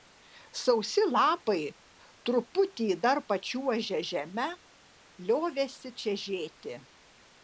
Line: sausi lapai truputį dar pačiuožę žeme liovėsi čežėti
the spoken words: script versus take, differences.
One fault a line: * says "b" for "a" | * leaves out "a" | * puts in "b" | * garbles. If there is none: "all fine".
all fine